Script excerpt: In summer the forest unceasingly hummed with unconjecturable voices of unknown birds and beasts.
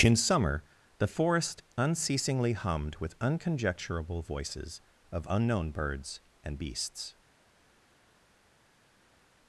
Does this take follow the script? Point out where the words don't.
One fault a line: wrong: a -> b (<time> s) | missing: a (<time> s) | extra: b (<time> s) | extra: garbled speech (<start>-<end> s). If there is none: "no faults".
no faults